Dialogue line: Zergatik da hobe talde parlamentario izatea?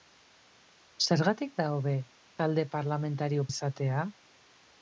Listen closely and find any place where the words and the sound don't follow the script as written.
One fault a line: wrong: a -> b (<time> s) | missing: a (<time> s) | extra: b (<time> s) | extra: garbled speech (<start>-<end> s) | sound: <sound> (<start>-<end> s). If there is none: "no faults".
no faults